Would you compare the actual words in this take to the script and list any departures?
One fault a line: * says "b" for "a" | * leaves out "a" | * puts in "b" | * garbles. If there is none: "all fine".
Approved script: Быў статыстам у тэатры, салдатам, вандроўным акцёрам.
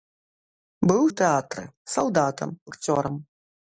* leaves out "статыстам"
* leaves out "вандроўным"